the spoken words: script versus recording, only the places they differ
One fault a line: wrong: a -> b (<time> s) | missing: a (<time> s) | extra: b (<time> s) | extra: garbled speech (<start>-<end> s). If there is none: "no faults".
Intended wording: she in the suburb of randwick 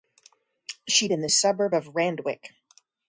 no faults